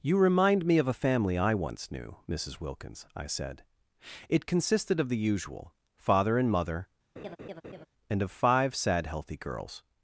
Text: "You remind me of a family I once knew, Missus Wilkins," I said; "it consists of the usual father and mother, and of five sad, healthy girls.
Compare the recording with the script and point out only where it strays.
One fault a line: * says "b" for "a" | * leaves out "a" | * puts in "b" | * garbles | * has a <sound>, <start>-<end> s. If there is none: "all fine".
* says "consisted" for "consists"
* has a laugh, 7.2-7.9 s